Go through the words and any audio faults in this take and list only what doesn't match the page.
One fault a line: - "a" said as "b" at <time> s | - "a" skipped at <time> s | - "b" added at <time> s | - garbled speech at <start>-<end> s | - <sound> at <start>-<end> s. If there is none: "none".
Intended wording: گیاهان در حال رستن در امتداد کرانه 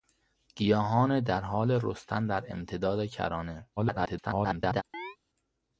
- garbled speech at 3.8-4.8 s
- chirp at 4.9-5.2 s